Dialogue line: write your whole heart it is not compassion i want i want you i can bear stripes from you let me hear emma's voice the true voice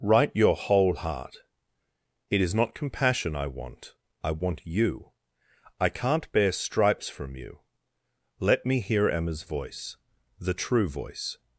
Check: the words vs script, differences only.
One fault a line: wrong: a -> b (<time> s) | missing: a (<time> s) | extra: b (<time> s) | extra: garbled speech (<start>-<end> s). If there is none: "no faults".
wrong: can -> can't (5.9 s)